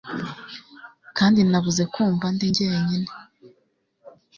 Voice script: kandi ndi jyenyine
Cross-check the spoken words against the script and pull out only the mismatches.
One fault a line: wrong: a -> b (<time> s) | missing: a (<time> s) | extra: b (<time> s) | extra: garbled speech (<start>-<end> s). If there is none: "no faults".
extra: nabuze kumva (1.5 s)